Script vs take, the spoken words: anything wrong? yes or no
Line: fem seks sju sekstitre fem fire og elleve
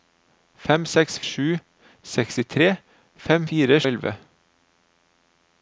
no